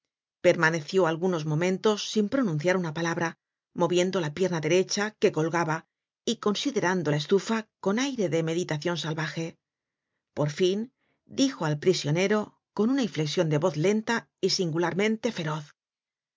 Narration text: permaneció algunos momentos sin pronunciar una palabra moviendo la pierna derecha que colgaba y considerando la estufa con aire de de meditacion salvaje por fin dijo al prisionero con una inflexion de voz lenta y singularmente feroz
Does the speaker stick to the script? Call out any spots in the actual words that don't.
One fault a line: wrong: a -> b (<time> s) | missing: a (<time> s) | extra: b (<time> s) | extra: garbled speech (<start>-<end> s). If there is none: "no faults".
missing: de (8.4 s)